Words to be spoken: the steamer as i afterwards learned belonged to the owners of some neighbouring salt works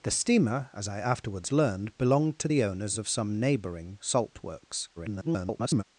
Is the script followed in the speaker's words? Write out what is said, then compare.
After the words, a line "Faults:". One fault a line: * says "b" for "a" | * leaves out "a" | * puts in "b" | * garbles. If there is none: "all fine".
the steamer as i afterwards learned belonged to the owners of some neighbouring salt works [garbled]
Faults:
* garbles